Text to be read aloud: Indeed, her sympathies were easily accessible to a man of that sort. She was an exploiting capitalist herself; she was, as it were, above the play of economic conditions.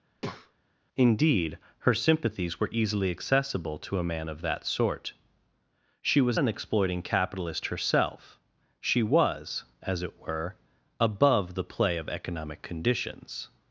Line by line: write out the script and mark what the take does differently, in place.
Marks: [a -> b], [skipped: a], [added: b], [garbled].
Indeed, her sympathies were easily accessible to a man of that sort. She was an exploiting capitalist herself; she was, as it were, above the play of economic conditions.